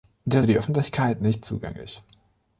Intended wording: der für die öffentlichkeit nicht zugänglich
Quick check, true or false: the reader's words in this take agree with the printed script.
true